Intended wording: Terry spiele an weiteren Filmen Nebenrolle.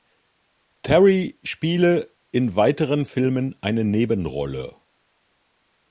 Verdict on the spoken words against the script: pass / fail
fail